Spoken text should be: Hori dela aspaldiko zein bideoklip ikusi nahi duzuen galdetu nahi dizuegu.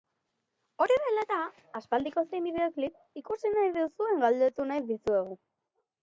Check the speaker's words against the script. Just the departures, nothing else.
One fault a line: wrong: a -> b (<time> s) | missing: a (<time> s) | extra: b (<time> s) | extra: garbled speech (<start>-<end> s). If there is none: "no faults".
extra: eta (1.2 s)